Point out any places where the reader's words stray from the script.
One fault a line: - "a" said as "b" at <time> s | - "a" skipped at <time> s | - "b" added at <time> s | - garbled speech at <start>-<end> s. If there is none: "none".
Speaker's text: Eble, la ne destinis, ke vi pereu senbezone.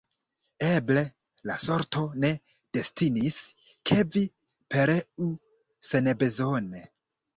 - "sorto" added at 1.6 s